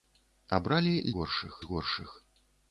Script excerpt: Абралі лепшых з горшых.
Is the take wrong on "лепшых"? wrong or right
wrong